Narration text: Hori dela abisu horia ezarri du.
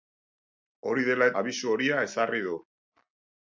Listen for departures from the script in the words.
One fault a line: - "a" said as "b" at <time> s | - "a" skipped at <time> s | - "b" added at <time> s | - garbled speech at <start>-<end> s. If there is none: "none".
none